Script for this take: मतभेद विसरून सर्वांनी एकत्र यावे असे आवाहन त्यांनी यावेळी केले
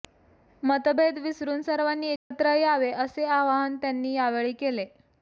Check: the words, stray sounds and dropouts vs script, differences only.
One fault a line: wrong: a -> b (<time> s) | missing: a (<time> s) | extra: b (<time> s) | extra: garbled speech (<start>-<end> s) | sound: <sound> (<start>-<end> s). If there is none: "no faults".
sound: dropout (2.2-2.3 s)